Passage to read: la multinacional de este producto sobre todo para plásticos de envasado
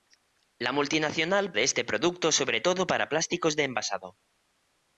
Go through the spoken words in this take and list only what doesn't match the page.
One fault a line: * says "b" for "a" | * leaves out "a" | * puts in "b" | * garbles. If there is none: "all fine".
all fine